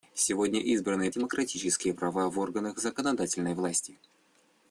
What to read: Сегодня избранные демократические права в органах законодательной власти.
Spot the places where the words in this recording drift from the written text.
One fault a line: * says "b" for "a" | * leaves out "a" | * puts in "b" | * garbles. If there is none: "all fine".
all fine